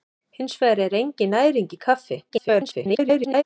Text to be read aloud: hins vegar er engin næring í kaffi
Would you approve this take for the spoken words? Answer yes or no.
no